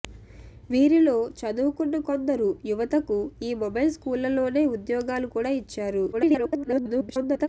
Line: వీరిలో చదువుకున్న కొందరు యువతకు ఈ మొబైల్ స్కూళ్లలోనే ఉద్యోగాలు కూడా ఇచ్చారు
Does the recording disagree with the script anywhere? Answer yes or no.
yes